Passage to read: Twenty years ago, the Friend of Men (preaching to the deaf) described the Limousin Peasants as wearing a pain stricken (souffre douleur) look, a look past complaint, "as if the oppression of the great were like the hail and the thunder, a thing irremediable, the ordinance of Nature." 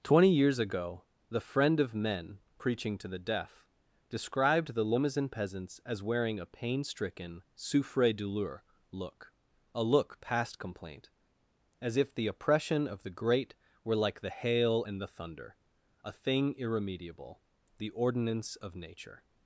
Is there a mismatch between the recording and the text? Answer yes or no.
no